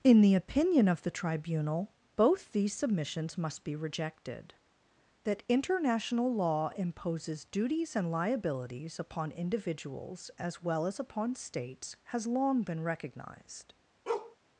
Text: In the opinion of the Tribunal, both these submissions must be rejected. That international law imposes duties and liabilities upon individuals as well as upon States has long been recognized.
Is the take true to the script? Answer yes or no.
yes